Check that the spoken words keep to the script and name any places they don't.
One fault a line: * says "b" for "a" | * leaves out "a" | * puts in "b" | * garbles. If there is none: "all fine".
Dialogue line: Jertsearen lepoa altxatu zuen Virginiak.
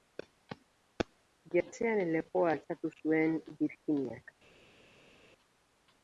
all fine